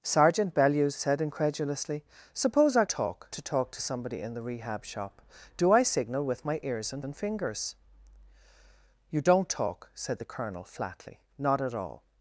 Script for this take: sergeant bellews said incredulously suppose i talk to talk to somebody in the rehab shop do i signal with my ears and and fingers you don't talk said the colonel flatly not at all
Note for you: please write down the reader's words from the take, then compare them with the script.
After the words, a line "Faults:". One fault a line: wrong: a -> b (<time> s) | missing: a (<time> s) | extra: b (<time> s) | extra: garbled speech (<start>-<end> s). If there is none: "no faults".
sergeant bellews said incredulously suppose i talk to talk to somebody in the rehab shop do i signal with my ears and and fingers you don't talk said the colonel flatly not at all
Faults:
no faults